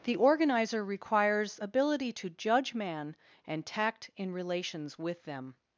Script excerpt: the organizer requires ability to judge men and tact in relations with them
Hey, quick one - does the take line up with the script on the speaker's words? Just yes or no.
no